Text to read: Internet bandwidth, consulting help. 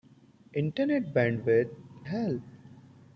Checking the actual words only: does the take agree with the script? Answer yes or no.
no